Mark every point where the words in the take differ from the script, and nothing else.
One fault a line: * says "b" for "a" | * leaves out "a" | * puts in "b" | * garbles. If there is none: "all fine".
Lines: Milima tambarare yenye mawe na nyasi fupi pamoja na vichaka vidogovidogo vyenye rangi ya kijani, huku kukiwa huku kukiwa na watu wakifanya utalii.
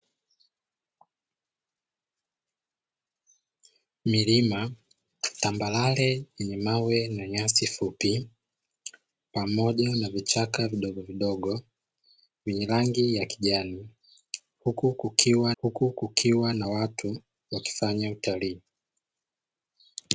all fine